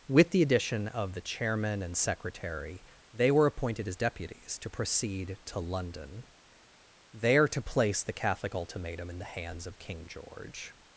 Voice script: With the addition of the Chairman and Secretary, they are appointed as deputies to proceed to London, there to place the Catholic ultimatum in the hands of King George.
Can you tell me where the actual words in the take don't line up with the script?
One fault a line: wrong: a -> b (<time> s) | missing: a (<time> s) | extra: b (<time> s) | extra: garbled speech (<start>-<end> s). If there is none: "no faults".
wrong: are -> were (3.3 s)